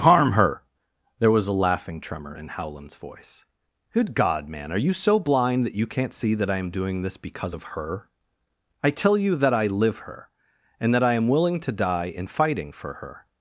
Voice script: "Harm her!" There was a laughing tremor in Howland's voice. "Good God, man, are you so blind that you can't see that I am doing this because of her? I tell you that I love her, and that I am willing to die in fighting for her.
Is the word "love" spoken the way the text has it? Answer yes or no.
no